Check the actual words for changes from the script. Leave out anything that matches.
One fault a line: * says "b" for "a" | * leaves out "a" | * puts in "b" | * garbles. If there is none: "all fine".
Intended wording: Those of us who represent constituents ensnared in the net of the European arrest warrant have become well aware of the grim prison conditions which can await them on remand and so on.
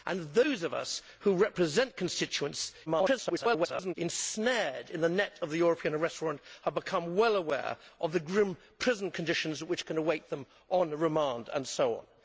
* garbles